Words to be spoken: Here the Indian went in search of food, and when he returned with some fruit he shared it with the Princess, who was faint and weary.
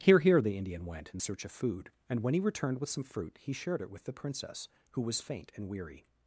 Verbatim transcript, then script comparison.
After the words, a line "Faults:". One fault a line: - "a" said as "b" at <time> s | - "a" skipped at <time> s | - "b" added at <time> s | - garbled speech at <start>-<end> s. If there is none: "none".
Here here the Indian went in search of food, and when he returned with some fruit he shared it with the Princess, who was faint and weary.
Faults:
- "here" added at 0.2 s